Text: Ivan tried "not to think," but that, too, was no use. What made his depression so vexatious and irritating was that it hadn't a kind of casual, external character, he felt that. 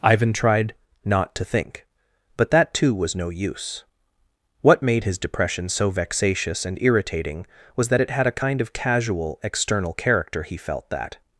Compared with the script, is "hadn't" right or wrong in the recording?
wrong